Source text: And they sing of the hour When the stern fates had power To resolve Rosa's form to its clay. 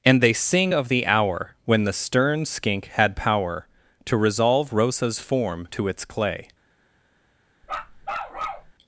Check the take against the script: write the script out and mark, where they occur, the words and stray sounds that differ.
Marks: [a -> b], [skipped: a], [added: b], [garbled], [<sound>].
And they sing of the hour When the stern [fates -> skink] had power To resolve Rosa's form to its clay. [bark]